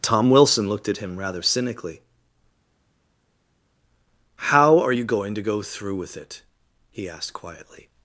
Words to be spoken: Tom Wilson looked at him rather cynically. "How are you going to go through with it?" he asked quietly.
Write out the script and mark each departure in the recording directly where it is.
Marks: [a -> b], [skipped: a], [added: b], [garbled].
Tom Wilson looked at him rather cynically. "How are you going to go through with it?" he asked quietly.